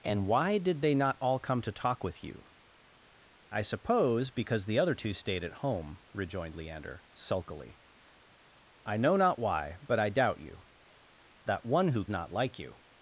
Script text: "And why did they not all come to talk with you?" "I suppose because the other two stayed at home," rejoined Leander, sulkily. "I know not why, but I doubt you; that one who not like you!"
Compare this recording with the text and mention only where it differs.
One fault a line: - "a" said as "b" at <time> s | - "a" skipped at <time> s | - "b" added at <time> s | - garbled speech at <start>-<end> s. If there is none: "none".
none